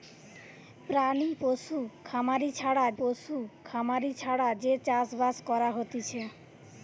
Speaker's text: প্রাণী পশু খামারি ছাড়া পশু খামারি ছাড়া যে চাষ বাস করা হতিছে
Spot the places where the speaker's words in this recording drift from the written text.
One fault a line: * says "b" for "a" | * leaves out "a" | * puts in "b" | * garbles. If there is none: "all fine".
all fine